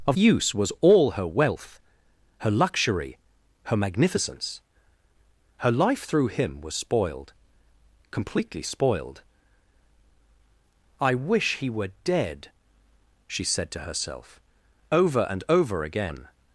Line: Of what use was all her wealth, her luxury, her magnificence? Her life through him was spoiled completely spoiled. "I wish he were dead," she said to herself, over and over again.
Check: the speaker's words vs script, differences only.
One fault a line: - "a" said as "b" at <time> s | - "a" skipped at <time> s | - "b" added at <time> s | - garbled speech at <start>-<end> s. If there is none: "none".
- "what" skipped at 0.2 s